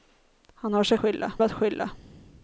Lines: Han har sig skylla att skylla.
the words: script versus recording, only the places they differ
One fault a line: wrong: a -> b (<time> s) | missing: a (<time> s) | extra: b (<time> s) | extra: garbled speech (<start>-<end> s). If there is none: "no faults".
no faults